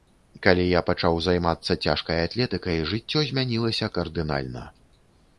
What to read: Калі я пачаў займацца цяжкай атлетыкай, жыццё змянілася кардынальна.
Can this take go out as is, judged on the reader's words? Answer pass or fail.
pass